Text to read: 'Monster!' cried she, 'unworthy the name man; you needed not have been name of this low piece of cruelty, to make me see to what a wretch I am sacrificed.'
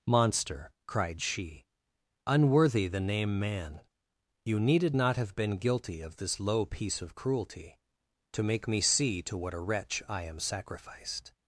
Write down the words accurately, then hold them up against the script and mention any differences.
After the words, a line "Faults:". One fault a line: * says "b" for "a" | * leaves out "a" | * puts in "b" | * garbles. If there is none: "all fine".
'Monster!' cried she, 'unworthy the name man; you needed not have been guilty of this low piece of cruelty, to make me see to what a wretch I am sacrificed.'
Faults:
* says "guilty" for "name"